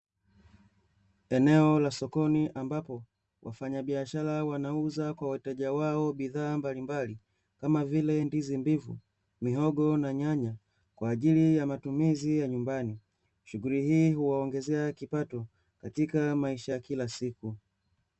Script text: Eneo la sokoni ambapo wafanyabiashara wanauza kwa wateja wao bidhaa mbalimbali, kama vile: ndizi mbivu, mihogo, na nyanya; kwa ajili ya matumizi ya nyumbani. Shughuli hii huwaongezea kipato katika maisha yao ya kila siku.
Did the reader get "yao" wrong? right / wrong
wrong